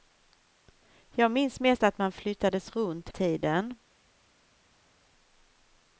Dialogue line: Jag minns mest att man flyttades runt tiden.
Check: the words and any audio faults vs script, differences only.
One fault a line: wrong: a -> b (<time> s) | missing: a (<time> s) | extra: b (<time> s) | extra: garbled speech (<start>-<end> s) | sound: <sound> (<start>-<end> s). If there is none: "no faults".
no faults